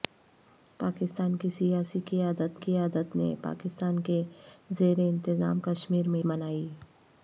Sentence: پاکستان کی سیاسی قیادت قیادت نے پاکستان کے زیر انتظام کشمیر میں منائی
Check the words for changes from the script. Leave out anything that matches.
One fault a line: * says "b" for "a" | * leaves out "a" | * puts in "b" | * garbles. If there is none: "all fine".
all fine